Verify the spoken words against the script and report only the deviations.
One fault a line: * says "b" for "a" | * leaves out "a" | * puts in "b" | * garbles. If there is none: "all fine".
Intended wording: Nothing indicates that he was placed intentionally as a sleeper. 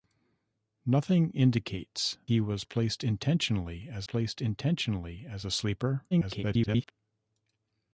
* leaves out "that"
* puts in "placed intentionally as"
* garbles